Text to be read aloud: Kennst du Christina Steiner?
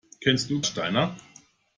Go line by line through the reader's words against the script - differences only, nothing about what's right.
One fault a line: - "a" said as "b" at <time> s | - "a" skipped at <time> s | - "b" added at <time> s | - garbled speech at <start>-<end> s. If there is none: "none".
- "Christina" skipped at 0.6 s